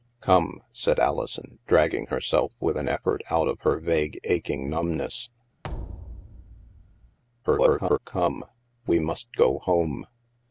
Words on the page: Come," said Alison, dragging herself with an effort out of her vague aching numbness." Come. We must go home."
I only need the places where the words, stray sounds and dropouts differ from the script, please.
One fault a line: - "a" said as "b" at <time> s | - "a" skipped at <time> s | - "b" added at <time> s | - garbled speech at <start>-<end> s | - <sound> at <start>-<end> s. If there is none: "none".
- thud at 5.6-7.2 s
- garbled speech at 7.4-8.0 s